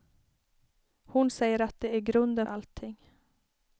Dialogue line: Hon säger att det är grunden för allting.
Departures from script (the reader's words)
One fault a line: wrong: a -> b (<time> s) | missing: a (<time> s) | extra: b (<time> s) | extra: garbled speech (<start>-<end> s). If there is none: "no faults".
missing: för (2.5 s)